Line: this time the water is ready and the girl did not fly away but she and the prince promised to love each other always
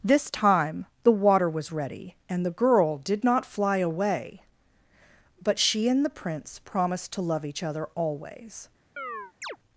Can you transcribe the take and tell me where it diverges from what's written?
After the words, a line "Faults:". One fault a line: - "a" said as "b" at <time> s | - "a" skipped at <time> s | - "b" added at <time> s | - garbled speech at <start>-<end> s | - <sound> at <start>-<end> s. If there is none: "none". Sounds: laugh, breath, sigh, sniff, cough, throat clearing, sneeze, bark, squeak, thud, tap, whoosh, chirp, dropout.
this time the water was ready and the girl did not fly away but she and the prince promised to love each other always
Faults:
- "is" said as "was" at 1.5 s
- chirp at 9.0-9.6 s